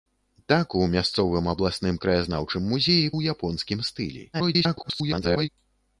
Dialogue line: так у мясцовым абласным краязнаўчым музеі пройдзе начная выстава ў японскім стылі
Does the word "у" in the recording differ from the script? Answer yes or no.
no